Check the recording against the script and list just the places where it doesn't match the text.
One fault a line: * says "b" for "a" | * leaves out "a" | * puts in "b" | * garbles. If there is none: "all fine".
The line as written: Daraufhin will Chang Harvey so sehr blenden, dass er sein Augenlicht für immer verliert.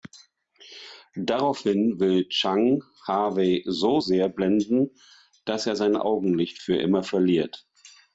all fine